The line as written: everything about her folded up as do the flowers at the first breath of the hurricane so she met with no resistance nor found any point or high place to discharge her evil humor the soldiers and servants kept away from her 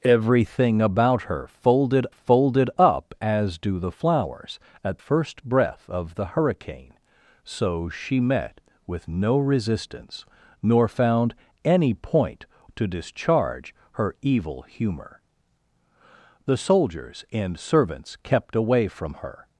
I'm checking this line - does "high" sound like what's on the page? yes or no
no